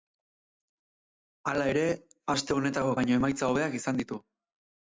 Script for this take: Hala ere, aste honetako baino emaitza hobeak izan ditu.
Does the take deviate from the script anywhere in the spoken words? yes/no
no